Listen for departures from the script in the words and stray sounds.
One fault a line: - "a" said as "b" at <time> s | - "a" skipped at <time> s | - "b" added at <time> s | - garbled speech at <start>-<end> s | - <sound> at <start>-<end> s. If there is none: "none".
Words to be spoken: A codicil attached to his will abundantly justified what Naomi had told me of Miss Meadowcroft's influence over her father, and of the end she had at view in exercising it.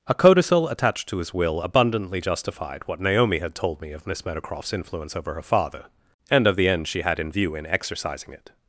- "at" said as "in" at 7.2 s